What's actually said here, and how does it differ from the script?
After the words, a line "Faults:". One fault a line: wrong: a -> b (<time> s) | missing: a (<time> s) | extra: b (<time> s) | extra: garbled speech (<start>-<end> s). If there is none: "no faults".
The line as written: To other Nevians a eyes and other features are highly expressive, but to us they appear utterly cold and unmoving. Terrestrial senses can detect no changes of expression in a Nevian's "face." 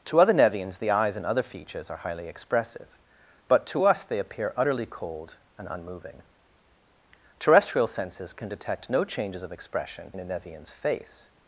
To other Nevians the eyes and other features are highly expressive, but to us they appear utterly cold and unmoving. Terrestrial senses can detect no changes of expression in a Nevian's "face."
Faults:
wrong: a -> the (0.8 s)